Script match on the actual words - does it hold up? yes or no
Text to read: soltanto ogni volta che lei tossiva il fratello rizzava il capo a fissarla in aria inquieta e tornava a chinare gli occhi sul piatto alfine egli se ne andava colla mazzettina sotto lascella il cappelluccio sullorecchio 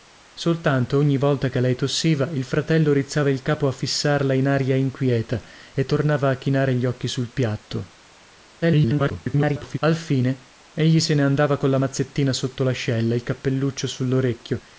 no